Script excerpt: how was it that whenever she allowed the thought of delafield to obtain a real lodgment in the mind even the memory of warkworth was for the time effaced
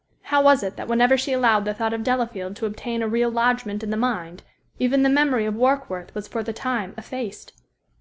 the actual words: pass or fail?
pass